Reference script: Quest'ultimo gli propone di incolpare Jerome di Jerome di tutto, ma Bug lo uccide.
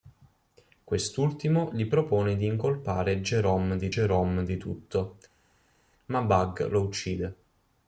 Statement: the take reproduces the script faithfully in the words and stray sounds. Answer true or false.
true